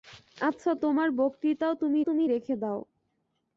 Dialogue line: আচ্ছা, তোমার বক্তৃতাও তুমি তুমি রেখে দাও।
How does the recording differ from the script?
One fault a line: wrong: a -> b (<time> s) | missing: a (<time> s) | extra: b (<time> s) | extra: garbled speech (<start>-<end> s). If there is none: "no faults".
no faults